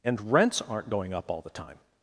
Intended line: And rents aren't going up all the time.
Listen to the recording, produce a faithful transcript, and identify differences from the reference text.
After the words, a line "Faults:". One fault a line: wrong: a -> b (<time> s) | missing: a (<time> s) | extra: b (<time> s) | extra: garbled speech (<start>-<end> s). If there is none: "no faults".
And rents aren't going up all the time.
Faults:
no faults